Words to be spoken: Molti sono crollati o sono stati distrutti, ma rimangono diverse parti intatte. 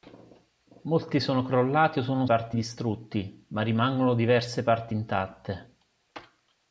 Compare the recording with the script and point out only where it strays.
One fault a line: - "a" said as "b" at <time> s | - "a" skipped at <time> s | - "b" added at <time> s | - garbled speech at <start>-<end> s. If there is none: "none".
- "stati" said as "parti" at 2.2 s